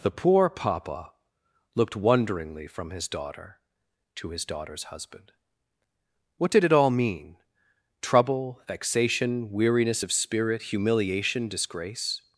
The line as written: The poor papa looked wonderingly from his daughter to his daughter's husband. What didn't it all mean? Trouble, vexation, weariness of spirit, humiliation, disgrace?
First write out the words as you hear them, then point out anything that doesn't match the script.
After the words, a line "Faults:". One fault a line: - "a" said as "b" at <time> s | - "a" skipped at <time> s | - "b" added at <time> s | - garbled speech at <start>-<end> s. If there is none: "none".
The poor papa looked wonderingly from his daughter to his daughter's husband. What did it all mean? Trouble, vexation, weariness of spirit, humiliation, disgrace?
Faults:
- "didn't" said as "did" at 6.5 s